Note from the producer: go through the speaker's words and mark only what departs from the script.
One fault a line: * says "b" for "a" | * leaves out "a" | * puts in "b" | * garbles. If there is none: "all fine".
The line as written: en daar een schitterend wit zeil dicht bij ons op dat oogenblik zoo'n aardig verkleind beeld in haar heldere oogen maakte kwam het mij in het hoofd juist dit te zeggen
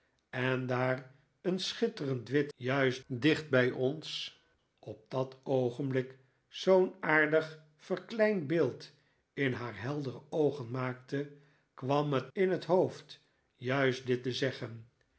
* says "juist" for "zeil"
* leaves out "mij"